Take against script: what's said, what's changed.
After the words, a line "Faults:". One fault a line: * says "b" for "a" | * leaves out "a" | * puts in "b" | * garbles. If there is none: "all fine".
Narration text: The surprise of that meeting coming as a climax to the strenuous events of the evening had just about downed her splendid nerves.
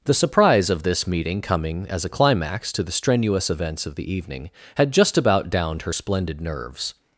The surprise of this meeting coming as a climax to the strenuous events of the evening had just about downed her splendid nerves.
Faults:
* says "this" for "that"